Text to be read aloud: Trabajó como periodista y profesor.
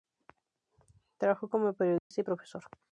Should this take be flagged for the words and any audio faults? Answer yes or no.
yes